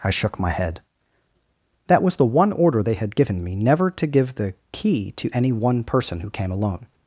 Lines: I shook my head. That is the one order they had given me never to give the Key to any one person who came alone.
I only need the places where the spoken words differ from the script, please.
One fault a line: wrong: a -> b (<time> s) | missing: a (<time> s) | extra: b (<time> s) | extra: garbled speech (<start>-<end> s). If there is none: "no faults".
wrong: is -> was (2.0 s)